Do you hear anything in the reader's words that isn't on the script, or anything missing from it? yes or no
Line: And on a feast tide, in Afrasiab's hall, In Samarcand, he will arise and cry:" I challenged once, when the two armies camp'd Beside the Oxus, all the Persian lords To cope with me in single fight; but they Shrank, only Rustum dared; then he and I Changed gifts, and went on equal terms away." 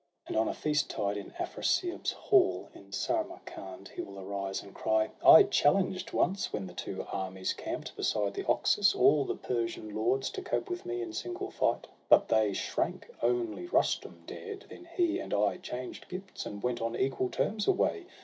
no